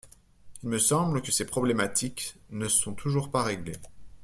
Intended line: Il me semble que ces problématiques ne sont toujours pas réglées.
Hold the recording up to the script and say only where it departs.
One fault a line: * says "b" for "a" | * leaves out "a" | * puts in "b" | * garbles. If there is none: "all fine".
all fine